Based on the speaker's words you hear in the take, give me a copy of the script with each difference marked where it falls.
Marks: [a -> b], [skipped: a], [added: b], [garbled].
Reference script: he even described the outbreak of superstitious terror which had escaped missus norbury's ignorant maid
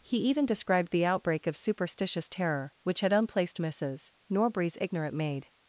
he even described the outbreak of superstitious terror which had [escaped -> unplaced] missus norbury's ignorant maid